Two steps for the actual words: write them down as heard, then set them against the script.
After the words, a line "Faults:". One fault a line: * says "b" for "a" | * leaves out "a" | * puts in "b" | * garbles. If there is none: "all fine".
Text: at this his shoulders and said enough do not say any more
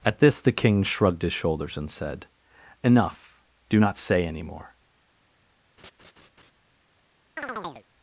at this the king shrugged his shoulders and said enough do not say any more
Faults:
* puts in "the king shrugged"